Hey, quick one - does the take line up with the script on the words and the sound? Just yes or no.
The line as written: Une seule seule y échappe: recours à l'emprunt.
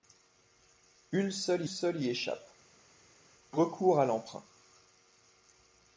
yes